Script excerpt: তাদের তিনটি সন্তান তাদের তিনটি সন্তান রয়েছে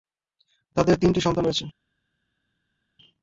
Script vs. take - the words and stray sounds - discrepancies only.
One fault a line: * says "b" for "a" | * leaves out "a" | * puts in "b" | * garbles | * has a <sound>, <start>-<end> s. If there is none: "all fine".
* leaves out "তাদের তিনটি সন্তান"